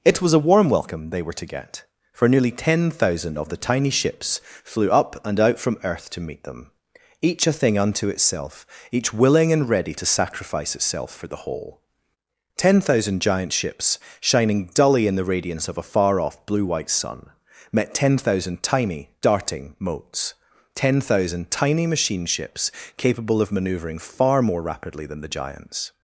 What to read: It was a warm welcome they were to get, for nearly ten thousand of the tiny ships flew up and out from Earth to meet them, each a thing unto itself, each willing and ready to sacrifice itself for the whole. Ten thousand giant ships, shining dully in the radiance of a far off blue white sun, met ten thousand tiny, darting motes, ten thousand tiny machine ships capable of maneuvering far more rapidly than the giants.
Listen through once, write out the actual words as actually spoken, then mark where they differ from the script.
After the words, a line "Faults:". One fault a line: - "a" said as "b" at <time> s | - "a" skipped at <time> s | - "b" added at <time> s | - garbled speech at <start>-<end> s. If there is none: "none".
It was a warm welcome they were to get, for nearly ten thousand of the tiny ships flew up and out from Earth to meet them, each a thing unto itself, each willing and ready to sacrifice itself for the whole. Ten thousand giant ships, shining dully in the radiance of a far off blue white sun, met ten thousand tiny, darting motes, ten thousand tiny machine ships capable of maneuvering far more rapidly than the giants.
Faults:
none